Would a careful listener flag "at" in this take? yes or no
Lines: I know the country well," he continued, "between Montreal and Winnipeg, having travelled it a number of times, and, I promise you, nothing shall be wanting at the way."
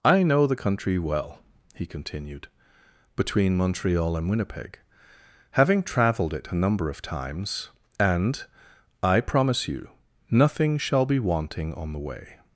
yes